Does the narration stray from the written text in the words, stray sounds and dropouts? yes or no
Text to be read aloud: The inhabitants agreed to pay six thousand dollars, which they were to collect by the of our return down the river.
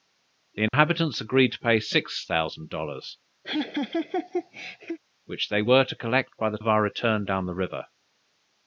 yes